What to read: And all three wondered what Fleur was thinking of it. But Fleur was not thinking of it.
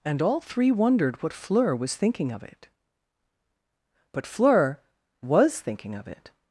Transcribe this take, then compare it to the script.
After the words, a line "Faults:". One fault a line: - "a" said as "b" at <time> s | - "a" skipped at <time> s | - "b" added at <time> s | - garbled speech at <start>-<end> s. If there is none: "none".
And all three wondered what Fleur was thinking of it. But Fleur was thinking of it.
Faults:
- "not" skipped at 5.6 s